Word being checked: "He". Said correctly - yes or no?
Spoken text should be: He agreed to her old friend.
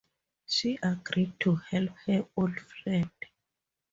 no